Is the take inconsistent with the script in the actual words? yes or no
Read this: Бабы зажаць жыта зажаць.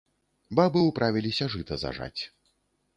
yes